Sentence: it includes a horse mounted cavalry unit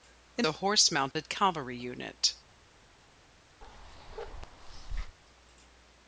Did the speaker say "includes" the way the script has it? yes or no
no